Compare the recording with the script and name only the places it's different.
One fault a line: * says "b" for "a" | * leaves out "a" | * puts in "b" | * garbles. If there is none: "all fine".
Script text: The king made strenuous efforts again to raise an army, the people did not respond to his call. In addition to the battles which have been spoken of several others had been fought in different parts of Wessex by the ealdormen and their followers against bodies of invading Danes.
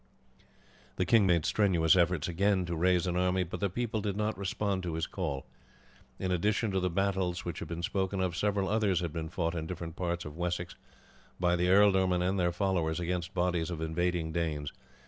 * puts in "but"